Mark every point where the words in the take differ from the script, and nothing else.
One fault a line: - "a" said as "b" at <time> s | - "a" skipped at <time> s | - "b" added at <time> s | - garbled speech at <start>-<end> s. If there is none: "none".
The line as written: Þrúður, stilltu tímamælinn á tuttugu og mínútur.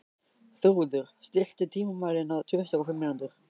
- "fimm" added at 2.9 s